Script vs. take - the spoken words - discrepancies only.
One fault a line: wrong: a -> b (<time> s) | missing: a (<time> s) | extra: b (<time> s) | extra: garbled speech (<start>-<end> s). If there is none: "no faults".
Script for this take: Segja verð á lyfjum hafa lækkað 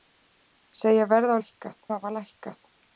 wrong: lyfjum -> lækkað (1.4 s)